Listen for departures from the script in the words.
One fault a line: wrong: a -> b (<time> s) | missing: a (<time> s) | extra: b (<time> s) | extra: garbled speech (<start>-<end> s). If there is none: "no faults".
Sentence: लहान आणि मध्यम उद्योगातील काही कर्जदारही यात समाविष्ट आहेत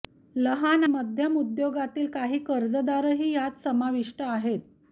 missing: आणि (0.8 s)